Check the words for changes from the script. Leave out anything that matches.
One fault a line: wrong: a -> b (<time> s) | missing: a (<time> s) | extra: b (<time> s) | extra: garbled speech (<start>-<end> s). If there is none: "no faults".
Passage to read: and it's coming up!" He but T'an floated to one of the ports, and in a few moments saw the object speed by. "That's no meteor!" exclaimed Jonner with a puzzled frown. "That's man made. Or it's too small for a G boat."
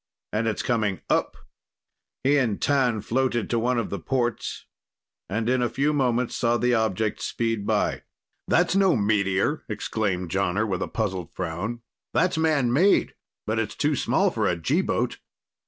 wrong: but -> and (2.4 s)
wrong: Or -> But (13.4 s)